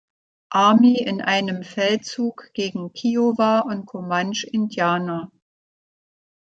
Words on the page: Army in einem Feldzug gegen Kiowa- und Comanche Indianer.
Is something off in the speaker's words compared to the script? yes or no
no